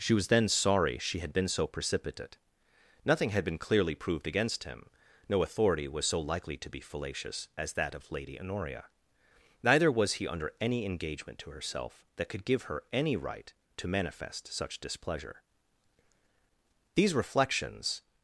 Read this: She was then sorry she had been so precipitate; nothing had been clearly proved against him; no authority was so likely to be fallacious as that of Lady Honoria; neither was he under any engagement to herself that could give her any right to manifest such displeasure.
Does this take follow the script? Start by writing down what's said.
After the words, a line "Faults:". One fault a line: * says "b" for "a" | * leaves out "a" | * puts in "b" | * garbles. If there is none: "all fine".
She was then sorry she had been so precipitate; nothing had been clearly proved against him; no authority was so likely to be fallacious as that of Lady Honoria; neither was he under any engagement to herself that could give her any right to manifest such displeasure. These reflections
Faults:
* puts in "These reflections"